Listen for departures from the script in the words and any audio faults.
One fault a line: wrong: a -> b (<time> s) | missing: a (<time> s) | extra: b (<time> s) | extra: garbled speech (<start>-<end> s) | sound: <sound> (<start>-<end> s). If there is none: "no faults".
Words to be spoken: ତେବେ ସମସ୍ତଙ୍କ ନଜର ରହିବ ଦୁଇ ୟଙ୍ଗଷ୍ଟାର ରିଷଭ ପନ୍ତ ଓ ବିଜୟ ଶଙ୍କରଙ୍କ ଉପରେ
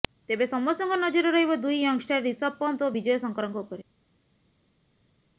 no faults